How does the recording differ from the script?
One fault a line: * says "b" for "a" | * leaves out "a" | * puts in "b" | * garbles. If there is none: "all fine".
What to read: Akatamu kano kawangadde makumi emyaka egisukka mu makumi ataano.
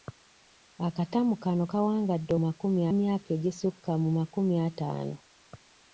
all fine